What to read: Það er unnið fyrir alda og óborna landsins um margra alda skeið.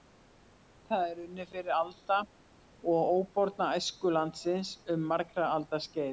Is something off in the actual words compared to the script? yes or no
yes